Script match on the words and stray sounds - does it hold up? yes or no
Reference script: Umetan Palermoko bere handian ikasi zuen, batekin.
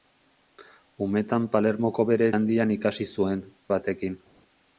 yes